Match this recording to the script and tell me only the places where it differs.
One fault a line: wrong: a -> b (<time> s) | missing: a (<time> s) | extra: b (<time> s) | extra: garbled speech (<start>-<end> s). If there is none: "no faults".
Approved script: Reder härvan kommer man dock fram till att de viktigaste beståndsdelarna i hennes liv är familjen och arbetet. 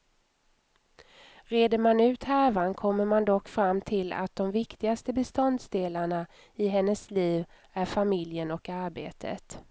extra: man ut (1.8 s)